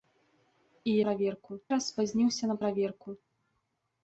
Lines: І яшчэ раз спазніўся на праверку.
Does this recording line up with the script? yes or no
no